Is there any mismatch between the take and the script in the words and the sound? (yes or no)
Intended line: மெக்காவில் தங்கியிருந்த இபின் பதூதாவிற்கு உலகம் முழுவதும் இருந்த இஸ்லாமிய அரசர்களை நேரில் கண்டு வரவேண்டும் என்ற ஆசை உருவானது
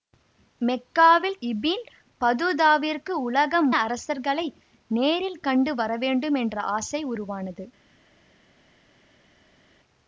yes